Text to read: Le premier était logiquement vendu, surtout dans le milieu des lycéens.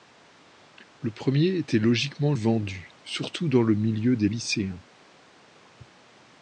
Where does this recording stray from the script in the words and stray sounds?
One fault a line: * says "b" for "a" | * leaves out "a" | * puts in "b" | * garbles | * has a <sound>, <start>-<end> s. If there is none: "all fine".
all fine